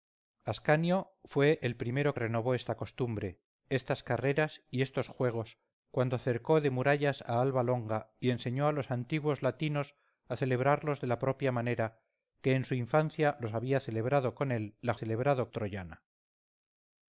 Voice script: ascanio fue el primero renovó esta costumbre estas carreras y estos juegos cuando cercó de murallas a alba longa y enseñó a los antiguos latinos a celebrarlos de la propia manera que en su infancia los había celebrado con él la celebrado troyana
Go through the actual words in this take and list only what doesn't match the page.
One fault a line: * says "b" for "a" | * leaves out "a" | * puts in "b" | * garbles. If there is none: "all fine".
all fine